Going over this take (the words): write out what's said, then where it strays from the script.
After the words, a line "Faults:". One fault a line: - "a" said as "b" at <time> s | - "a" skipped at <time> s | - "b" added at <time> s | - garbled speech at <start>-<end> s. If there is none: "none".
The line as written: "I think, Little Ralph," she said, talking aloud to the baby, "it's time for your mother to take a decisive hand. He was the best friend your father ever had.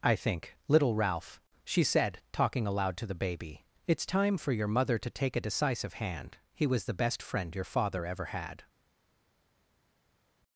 "I think, Little Ralph," she said, talking aloud to the baby, "it's time for your mother to take a decisive hand. He was the best friend your father ever had.
Faults:
none